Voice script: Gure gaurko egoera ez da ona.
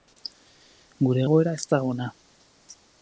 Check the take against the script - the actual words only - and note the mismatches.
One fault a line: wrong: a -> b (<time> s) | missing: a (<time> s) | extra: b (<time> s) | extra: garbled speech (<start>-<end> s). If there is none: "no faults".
missing: gaurko (1.2 s)